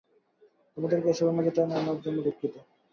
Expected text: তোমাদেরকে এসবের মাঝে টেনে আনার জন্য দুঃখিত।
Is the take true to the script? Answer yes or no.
yes